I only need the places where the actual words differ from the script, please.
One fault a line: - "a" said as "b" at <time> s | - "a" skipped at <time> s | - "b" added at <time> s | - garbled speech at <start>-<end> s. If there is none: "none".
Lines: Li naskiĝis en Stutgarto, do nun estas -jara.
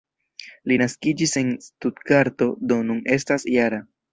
none